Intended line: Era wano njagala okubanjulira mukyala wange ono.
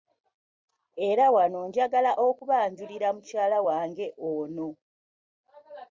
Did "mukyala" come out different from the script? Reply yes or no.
no